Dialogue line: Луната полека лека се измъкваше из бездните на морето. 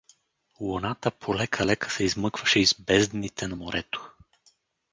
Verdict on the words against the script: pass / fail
pass